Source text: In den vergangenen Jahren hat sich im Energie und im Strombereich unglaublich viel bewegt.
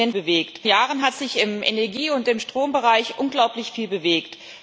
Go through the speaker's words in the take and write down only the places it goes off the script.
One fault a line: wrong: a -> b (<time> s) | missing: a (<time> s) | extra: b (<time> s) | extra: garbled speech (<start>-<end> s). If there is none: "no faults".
wrong: vergangenen -> bewegt (0.1 s)